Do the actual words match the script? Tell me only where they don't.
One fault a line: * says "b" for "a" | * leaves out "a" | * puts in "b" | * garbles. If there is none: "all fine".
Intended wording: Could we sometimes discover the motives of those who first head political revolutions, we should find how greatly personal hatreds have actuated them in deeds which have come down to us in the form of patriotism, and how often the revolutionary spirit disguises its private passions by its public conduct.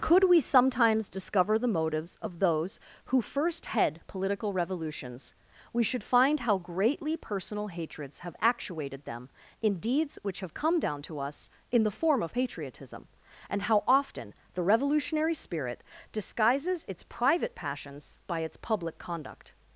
all fine